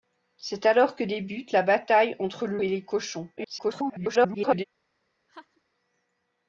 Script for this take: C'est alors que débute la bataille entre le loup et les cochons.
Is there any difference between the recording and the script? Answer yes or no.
yes